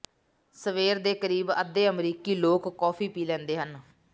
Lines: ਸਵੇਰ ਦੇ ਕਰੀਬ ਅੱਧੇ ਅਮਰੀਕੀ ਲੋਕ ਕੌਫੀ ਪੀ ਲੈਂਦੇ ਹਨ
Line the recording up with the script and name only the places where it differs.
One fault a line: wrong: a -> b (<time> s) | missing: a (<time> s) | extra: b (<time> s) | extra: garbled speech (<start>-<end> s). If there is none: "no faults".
no faults